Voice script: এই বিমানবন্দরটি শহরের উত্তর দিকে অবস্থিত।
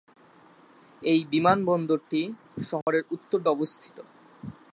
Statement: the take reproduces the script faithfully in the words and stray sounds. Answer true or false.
false